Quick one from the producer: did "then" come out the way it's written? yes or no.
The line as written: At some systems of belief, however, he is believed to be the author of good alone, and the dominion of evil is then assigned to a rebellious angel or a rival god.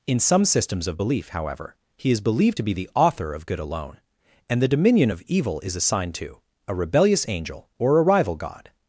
no